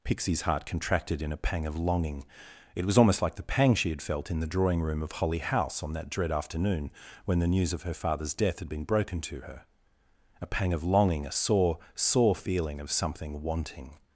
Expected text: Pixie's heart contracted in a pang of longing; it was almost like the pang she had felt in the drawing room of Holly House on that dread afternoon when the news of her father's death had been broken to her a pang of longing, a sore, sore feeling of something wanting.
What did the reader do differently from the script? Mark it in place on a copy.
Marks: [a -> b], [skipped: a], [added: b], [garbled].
Pixie's heart contracted in a pang of longing; it was almost like the pang she had felt in the drawing room of Holly House on that dread afternoon when the news of her father's death had been broken to her a pang of longing, a sore, sore feeling of something wanting.